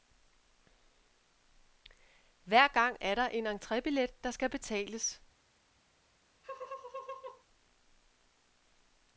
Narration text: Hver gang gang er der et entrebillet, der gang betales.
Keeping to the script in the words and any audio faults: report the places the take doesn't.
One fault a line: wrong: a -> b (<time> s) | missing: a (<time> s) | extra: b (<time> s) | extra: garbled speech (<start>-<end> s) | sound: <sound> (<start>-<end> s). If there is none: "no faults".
missing: gang (3.0 s)
wrong: et -> en (3.3 s)
wrong: gang -> skal (4.3 s)
sound: laugh (6.4-7.4 s)